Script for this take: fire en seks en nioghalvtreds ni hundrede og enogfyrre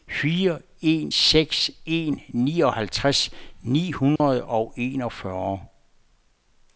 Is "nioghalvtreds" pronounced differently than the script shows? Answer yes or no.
no